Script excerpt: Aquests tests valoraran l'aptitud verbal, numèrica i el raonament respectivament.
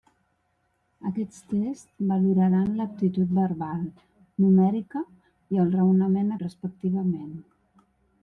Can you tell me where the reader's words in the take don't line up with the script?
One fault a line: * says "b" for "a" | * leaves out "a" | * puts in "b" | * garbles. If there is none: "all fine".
all fine